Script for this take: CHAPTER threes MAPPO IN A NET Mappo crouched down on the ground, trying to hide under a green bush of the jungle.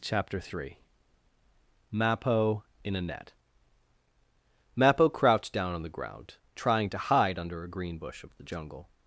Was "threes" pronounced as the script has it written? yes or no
no